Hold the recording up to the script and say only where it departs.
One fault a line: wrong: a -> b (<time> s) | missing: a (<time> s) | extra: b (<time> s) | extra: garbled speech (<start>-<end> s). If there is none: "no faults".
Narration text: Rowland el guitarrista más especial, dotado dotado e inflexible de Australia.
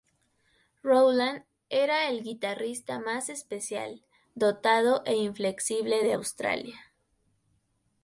extra: era (1.7 s)
missing: dotado (5.0 s)